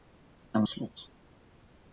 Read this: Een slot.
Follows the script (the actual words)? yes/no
yes